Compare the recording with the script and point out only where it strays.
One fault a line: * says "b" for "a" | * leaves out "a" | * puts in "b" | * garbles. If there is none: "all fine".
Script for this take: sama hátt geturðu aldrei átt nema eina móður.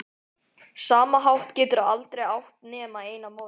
all fine